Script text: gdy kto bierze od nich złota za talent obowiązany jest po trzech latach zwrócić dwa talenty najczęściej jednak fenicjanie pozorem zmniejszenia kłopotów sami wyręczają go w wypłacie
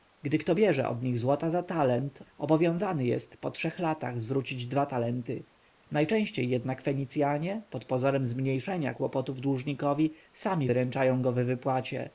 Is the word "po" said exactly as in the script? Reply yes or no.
yes